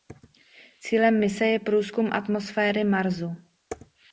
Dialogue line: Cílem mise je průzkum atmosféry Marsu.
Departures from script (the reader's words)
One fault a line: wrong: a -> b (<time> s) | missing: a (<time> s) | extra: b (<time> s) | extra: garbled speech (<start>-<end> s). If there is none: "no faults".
no faults